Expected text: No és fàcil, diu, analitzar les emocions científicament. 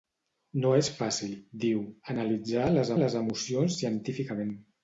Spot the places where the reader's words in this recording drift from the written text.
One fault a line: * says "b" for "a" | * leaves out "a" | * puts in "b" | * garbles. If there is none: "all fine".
* puts in "les"